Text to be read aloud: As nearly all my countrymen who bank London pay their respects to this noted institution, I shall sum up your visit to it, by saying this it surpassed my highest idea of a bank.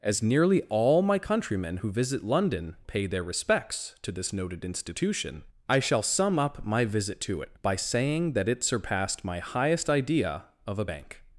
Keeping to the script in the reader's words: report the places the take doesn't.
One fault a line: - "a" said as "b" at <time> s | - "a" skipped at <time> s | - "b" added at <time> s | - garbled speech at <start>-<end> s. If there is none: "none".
- "bank" said as "visit" at 1.9 s
- "your" said as "my" at 6.6 s
- "this" said as "that" at 8.3 s